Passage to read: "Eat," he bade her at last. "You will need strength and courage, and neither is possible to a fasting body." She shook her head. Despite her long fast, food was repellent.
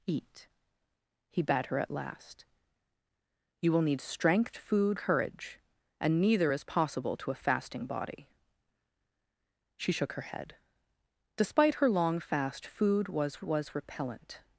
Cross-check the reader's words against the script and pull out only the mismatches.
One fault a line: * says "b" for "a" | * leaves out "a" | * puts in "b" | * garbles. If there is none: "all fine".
* says "food" for "and"
* puts in "was"